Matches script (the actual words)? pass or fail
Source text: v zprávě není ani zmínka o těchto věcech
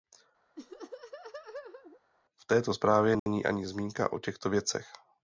fail